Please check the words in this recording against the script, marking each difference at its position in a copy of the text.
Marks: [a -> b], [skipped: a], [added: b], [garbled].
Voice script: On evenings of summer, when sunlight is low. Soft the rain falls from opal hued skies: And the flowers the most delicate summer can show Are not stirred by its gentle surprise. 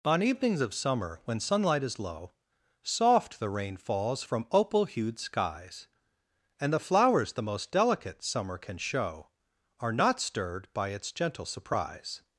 On evenings of summer, when sunlight is low. Soft the rain falls from opal hued skies: And the flowers the most delicate summer can show Are not stirred by its gentle surprise.